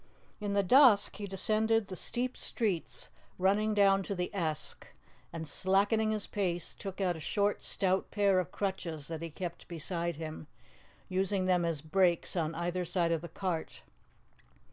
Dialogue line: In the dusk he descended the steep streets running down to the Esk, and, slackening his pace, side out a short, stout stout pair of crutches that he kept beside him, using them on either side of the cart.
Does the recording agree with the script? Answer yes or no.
no